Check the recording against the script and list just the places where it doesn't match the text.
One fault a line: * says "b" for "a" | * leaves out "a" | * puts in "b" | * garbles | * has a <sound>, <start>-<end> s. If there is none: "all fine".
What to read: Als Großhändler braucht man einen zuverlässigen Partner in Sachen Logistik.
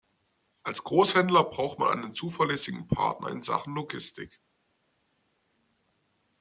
all fine